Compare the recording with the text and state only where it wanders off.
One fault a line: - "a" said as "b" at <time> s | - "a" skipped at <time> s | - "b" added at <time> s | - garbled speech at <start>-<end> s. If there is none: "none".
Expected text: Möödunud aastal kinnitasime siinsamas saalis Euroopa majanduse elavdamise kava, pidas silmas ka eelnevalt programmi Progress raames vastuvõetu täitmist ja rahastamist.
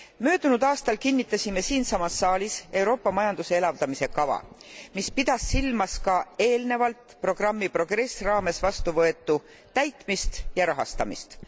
- "mis" added at 5.0 s